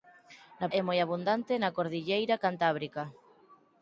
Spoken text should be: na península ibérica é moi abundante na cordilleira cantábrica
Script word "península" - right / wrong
wrong